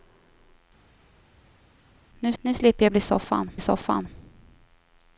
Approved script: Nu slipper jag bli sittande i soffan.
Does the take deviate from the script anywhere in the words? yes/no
yes